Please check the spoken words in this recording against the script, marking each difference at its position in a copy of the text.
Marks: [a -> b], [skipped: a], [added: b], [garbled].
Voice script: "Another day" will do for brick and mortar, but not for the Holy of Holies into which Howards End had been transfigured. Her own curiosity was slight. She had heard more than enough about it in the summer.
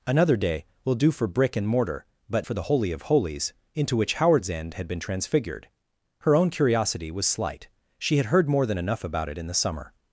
"Another day" will do for brick and mortar, but [skipped: not] for the Holy of Holies into which Howards End had been transfigured. Her own curiosity was slight. She had heard more than enough about it in the summer.